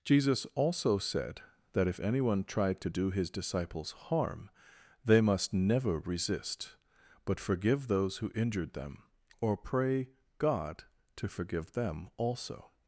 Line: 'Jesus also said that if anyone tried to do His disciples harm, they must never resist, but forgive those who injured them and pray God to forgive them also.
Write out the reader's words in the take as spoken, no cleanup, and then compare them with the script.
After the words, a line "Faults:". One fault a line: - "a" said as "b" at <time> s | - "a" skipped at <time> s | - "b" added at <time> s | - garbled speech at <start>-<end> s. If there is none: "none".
'Jesus also said that if anyone tried to do His disciples harm, they must never resist, but forgive those who injured them or pray God to forgive them also.
Faults:
- "and" said as "or" at 9.4 s